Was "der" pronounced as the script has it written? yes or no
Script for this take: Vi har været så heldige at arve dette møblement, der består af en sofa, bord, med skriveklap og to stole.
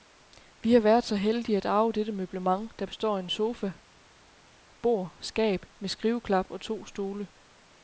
yes